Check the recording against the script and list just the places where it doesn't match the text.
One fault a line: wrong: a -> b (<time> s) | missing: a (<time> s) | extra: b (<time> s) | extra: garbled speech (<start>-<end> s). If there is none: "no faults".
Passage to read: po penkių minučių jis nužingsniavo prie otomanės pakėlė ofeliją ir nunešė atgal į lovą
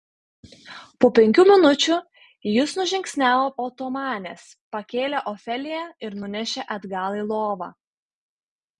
missing: prie (3.5 s)